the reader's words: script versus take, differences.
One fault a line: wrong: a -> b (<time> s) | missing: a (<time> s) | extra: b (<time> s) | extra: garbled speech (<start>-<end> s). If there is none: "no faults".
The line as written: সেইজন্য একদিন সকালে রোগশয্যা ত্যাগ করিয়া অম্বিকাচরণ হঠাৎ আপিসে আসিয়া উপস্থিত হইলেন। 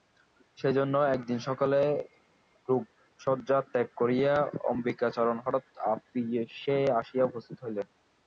no faults